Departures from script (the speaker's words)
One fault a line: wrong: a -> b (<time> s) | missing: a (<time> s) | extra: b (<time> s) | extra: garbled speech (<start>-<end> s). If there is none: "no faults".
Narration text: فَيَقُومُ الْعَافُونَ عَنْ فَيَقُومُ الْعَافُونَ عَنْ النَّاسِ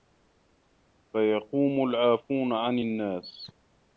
missing: فَيَقُومُ الْعَافُونَ عَنْ (2.8 s)